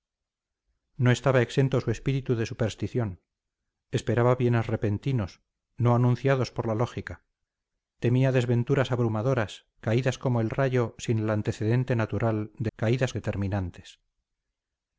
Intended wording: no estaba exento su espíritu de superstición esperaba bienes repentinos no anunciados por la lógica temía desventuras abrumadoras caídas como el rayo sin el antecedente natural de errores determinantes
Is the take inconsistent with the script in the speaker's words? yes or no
yes